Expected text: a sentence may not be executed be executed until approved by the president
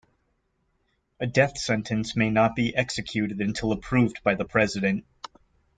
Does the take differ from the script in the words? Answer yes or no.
yes